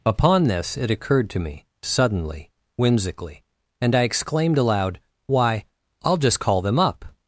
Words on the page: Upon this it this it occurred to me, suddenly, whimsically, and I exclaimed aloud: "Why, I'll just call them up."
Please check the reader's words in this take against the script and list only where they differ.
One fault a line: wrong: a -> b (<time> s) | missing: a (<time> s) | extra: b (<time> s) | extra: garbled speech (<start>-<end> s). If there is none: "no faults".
missing: this it (0.9 s)